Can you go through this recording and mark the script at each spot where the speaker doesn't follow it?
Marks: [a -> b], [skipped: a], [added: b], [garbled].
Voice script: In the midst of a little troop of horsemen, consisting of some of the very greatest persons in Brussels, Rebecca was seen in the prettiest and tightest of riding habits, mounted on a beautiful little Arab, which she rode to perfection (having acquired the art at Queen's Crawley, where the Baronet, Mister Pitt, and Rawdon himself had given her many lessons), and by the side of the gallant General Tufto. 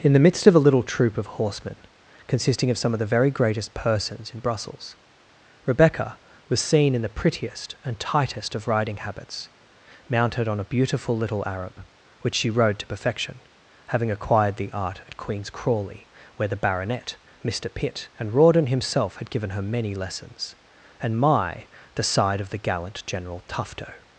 In the midst of a little troop of horsemen, consisting of some of the very greatest persons in Brussels, Rebecca was seen in the prettiest and tightest of riding habits, mounted on a beautiful little Arab, which she rode to perfection (having acquired the art at Queen's Crawley, where the Baronet, Mister Pitt, and Rawdon himself had given her many lessons), and [by -> my] the side of the gallant General Tufto.